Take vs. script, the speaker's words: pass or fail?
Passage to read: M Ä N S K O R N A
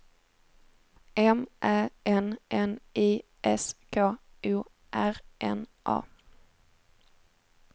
fail